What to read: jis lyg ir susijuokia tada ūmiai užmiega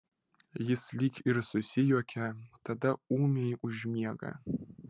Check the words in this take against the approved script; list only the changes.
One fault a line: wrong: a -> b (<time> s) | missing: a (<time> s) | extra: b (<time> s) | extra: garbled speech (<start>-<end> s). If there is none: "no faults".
no faults